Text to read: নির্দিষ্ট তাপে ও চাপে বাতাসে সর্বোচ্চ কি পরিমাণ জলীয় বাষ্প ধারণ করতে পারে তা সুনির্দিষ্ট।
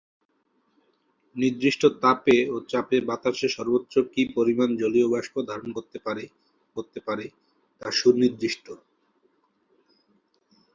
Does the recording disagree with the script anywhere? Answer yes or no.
yes